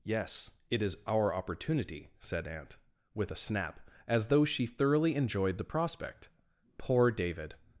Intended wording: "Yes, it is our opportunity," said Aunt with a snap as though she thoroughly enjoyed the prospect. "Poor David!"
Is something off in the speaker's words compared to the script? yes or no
no